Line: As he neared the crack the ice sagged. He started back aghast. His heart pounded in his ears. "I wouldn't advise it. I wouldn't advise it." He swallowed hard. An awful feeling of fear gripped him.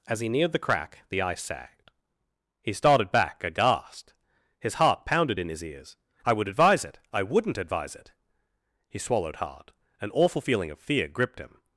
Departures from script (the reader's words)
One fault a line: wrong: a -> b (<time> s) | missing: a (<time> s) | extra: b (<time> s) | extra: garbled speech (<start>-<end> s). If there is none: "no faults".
wrong: wouldn't -> would (6.3 s)